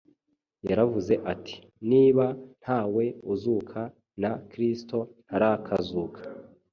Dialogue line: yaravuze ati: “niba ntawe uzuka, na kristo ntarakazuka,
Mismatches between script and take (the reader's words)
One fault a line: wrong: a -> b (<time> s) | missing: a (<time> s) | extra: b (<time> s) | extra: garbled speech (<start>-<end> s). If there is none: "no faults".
no faults